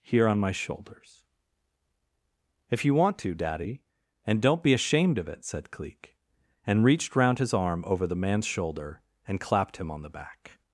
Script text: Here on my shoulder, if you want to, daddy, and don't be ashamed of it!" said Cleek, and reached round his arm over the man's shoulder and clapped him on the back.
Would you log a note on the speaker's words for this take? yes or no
yes